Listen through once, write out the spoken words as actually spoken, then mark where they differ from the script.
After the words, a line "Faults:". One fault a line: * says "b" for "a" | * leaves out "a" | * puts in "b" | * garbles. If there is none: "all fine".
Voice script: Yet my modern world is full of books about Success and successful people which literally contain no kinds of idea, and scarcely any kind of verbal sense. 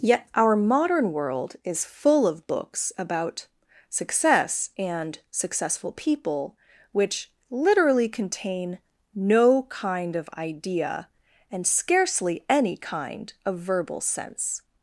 Yet our modern world is full of books about Success and successful people which literally contain no kind of idea, and scarcely any kind of verbal sense.
Faults:
* says "our" for "my"
* says "kind" for "kinds"